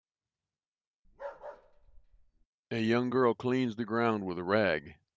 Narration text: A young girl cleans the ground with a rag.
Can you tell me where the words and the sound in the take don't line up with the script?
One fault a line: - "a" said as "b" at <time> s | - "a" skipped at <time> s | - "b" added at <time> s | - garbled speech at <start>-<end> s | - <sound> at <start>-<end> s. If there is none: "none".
- bark at 1.0-2.5 s